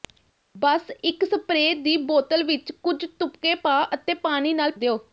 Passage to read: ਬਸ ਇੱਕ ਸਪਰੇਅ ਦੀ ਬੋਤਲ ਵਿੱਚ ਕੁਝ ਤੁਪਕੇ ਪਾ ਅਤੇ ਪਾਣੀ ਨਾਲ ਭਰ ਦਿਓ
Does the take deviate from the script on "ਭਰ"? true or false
true